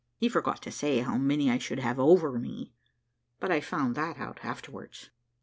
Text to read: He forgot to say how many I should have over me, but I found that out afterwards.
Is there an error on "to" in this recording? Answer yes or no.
no